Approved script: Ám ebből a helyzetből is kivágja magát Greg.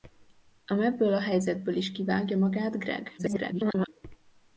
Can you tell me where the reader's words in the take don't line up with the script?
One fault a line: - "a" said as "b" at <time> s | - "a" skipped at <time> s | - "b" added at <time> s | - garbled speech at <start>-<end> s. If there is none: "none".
- garbled speech at 3.2-3.9 s